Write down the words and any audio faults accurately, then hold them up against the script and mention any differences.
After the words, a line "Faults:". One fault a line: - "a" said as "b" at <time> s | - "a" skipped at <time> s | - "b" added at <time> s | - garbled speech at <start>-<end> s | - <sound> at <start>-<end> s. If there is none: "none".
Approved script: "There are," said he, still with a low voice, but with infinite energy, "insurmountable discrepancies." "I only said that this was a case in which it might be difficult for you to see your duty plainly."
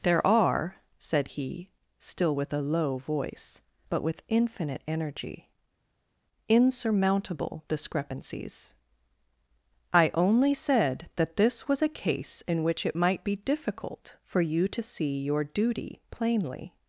"There are," said he, still with a low voice, but with infinite energy, "insurmountable discrepancies." "I only said that this was a case in which it might be difficult for you to see your duty plainly."
Faults:
none